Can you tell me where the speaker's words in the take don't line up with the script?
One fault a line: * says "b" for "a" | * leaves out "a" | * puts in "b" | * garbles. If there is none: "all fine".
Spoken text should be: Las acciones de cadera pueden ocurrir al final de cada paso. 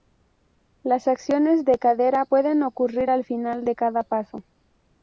all fine